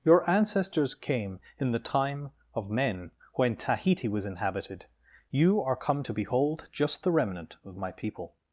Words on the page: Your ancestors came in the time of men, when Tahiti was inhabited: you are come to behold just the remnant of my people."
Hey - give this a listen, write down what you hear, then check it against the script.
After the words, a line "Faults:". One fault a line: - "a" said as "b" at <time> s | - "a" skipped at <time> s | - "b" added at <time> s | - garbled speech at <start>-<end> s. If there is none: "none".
Your ancestors came in the time of men, when Tahiti was inhabited: you are come to behold just the remnant of my people."
Faults:
none